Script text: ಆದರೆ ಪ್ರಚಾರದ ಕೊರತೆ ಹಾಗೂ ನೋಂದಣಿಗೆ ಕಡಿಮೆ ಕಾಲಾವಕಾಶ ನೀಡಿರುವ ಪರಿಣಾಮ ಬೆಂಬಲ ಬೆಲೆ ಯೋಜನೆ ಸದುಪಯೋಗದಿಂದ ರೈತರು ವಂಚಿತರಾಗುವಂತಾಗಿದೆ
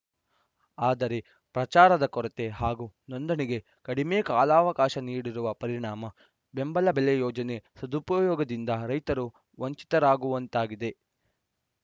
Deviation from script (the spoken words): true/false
false